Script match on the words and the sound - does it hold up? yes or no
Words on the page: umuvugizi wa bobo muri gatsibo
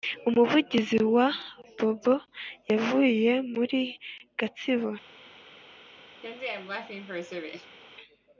no